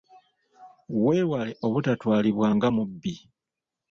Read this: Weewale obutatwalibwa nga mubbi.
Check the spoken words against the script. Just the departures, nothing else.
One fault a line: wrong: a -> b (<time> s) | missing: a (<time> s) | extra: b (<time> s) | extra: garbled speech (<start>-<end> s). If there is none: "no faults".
no faults